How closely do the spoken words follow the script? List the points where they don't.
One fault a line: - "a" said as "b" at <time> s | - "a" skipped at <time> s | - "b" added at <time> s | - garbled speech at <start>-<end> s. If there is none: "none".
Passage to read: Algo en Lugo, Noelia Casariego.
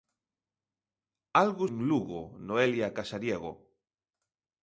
none